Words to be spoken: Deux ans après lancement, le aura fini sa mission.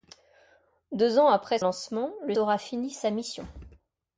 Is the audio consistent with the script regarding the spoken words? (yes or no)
yes